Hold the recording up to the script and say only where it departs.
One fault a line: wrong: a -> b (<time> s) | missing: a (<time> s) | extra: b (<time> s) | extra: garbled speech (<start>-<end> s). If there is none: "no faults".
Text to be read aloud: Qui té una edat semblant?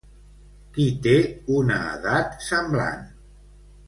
no faults